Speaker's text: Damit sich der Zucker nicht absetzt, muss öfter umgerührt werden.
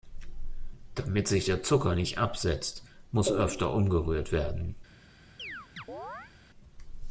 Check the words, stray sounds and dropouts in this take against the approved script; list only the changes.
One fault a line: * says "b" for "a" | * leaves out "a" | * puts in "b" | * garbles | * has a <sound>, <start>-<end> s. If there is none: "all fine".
* has a chirp, 5.4-6.3 s